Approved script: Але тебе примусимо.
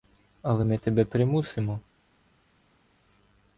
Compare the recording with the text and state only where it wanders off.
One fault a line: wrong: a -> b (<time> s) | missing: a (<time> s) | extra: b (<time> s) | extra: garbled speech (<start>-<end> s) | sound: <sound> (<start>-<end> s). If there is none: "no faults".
extra: ми (0.6 s)